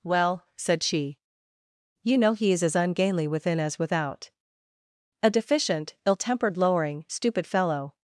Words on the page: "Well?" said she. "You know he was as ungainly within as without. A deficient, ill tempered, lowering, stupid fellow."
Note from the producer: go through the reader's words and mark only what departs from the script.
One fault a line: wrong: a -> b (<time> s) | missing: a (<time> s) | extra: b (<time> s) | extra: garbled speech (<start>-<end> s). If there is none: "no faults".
wrong: was -> is (2.5 s)